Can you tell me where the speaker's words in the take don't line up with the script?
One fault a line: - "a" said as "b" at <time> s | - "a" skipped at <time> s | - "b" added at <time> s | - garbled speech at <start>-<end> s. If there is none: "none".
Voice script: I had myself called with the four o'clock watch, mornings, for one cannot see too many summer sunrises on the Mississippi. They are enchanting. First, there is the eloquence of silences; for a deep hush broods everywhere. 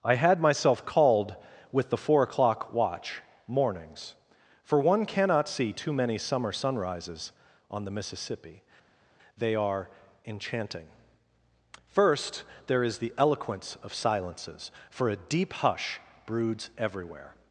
none